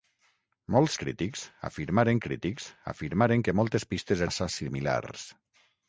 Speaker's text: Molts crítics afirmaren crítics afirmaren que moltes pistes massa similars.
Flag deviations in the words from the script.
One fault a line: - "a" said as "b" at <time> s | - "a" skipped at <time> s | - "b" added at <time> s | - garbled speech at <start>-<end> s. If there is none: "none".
none